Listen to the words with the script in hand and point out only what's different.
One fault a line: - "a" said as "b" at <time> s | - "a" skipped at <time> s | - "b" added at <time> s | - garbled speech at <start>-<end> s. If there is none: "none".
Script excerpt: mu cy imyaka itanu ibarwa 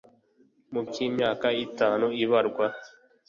none